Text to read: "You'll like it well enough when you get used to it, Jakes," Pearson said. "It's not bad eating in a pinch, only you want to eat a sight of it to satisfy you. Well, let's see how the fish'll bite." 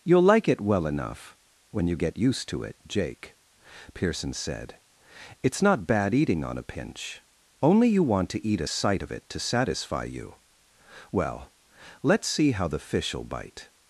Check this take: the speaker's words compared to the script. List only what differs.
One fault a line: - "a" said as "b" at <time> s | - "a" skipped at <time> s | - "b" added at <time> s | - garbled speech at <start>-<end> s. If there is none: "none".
- "Jakes" said as "Jake" at 2.9 s
- "in" said as "on" at 6.4 s